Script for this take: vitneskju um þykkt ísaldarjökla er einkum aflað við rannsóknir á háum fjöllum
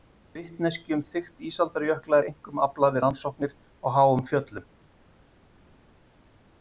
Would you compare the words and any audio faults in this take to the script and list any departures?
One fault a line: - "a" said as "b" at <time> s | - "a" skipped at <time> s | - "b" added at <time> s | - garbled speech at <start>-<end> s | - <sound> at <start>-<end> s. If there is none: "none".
none